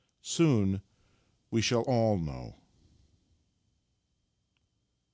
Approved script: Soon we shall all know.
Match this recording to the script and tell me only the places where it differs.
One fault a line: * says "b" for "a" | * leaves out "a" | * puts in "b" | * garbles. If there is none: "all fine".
all fine